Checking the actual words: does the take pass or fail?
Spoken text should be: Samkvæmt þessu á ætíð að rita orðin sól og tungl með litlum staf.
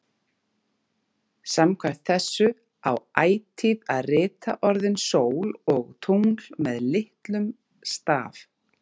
pass